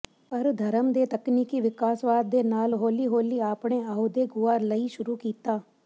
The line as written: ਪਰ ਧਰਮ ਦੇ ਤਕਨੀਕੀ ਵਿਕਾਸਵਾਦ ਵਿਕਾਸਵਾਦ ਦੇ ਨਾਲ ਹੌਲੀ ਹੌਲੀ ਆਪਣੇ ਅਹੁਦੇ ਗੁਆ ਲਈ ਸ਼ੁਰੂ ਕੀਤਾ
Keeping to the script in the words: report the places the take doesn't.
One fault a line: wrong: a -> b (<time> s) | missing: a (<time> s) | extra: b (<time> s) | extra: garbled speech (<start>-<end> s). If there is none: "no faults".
missing: ਵਿਕਾਸਵਾਦ (2.3 s)